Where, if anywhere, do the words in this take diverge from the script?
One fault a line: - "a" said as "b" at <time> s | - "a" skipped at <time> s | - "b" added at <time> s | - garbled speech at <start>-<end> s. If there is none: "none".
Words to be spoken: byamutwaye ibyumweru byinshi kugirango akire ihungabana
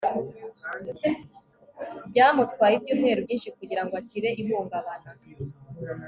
none